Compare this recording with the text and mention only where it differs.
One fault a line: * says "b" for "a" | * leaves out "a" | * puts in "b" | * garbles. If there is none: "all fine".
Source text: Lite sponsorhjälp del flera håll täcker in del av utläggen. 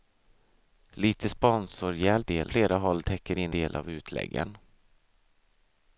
all fine